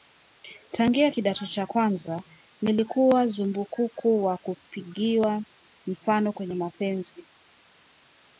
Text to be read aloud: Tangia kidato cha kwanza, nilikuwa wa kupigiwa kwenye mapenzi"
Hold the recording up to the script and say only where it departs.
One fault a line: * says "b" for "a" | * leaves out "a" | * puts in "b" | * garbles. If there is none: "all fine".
* puts in "zumbukuku"
* puts in "mfano"